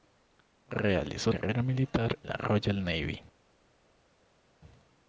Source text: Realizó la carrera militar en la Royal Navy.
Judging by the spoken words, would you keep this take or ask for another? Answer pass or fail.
fail